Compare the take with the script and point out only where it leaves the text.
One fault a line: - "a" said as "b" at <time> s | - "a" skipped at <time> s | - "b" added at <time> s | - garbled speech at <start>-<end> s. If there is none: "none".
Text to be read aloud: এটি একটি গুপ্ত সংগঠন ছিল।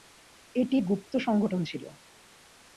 - "একটি" skipped at 0.8 s